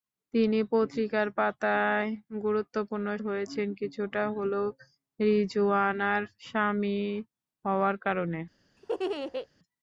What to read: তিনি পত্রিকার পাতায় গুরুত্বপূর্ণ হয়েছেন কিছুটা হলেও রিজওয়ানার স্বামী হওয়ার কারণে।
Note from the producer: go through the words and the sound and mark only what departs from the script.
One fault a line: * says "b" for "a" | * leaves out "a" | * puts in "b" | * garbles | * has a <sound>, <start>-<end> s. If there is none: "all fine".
* has a laugh, 8.8-9.5 s